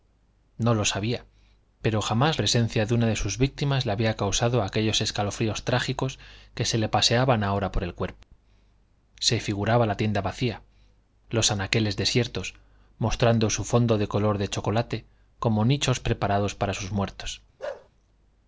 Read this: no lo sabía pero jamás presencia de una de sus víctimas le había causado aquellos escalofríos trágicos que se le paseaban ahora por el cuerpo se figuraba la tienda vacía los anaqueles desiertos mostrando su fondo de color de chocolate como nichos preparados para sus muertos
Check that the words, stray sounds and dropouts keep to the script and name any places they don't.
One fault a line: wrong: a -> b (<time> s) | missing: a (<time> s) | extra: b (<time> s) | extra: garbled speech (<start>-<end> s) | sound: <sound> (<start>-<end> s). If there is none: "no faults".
sound: dropout (8.2-8.3 s)
sound: bark (17.6-17.9 s)